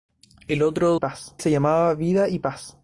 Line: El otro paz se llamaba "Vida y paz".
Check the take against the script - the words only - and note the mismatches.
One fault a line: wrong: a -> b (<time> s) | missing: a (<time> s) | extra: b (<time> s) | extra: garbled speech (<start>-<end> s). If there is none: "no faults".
no faults